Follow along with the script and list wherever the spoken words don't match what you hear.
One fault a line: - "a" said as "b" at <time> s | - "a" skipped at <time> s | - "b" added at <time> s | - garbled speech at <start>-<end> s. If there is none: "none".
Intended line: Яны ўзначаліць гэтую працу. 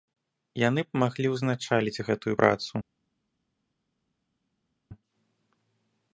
- "б маглі" added at 0.9 s